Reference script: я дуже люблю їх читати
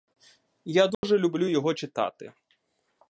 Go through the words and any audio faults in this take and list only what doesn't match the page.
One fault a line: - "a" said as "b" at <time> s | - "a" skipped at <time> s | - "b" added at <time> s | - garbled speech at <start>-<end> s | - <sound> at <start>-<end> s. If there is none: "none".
- dropout at 0.9-1.0 s
- "їх" said as "його" at 1.5 s